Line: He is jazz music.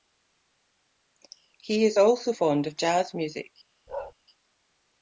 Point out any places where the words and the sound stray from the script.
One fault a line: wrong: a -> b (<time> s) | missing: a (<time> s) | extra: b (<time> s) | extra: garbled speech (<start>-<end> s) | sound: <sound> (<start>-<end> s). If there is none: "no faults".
extra: also fond of (2.0 s)
sound: bark (3.9-4.1 s)